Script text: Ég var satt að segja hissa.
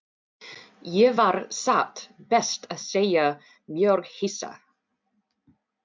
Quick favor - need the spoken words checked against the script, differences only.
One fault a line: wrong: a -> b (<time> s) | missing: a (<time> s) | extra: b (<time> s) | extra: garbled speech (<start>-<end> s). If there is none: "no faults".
extra: best (2.3 s)
extra: mjög (3.8 s)